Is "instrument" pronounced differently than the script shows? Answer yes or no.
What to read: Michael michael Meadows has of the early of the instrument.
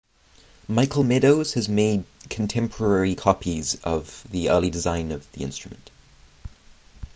no